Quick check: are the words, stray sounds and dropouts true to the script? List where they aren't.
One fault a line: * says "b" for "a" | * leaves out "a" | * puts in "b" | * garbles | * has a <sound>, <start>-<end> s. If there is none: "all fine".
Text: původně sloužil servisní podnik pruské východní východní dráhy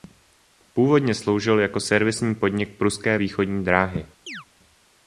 * puts in "jako"
* leaves out "východní"
* has a chirp, 4.3-4.5 s